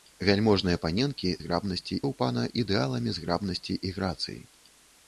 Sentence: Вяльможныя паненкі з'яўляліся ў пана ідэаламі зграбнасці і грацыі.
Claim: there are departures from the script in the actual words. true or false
true